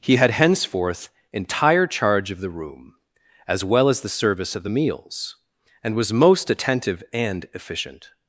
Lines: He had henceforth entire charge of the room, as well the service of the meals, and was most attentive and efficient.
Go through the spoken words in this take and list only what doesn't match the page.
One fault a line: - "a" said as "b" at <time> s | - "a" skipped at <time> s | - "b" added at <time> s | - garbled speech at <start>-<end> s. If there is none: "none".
- "as" added at 3.9 s